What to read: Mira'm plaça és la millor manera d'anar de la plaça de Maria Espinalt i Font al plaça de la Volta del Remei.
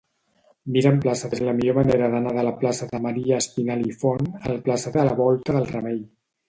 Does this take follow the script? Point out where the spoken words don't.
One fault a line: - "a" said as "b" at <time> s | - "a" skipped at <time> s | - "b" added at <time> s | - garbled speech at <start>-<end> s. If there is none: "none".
none